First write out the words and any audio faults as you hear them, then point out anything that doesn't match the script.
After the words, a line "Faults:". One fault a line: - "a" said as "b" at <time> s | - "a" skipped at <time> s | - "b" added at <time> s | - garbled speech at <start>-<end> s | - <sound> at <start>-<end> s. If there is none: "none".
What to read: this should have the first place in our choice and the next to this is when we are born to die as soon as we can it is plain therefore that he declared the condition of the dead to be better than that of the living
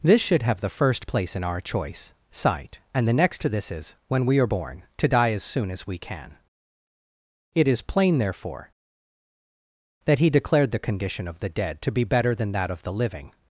this should have the first place in our choice sight and the next to this is when we are born to die as soon as we can it is plain therefore that he declared the condition of the dead to be better than that of the living
Faults:
- "sight" added at 2.3 s